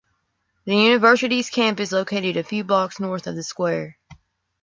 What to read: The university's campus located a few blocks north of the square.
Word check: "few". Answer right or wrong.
right